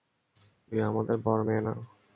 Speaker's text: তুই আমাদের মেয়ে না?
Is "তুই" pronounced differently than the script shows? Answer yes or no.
no